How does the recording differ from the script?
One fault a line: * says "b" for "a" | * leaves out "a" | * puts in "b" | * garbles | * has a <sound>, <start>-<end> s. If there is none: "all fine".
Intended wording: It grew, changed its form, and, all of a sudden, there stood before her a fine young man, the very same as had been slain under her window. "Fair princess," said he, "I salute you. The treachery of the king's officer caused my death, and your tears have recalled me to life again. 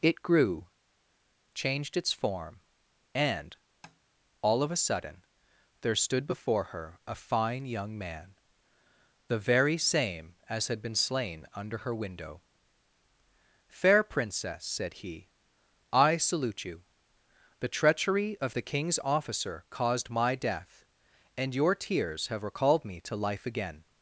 * has a tap, 3.8-4.0 s